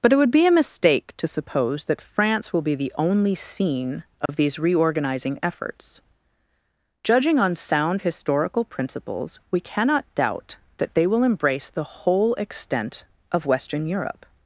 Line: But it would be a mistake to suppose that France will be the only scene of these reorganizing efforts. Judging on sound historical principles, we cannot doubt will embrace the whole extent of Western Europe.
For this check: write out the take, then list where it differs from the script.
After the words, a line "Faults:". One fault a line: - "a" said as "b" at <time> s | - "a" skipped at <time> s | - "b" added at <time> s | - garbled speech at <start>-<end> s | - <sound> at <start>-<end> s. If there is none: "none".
But it would be a mistake to suppose that France will be the only scene of these reorganizing efforts. Judging on sound historical principles, we cannot doubt that they will embrace the whole extent of Western Europe.
Faults:
- dropout at 4.3-4.3 s
- "that they" added at 10.8 s